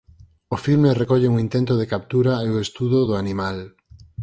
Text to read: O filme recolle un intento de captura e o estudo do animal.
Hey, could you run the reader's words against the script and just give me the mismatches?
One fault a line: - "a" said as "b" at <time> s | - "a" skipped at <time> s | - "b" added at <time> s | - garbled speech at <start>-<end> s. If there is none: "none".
none